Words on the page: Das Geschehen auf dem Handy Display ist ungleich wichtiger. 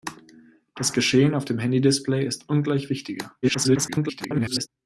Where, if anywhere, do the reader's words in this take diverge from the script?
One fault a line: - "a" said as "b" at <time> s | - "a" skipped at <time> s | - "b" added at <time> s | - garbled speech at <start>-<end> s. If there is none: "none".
- garbled speech at 3.4-4.7 s